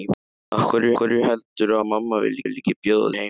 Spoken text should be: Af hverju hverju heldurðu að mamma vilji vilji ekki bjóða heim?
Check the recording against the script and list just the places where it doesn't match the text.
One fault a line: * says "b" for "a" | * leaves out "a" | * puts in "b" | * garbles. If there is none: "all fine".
all fine